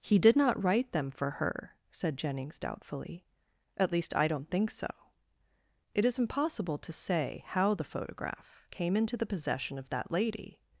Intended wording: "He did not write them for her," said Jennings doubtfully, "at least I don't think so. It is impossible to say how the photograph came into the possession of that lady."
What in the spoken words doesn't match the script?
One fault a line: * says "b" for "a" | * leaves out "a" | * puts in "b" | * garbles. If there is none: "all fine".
all fine